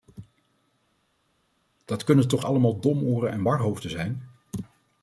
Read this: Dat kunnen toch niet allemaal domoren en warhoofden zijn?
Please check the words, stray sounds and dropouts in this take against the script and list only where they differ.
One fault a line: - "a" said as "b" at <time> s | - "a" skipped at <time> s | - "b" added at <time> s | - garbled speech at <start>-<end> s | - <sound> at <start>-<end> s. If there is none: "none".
- "niet" skipped at 2.4 s